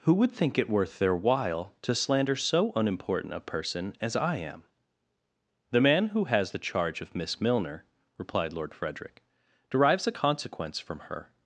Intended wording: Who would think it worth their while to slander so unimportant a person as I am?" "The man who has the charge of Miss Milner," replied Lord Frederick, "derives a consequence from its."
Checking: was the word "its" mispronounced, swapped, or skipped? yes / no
yes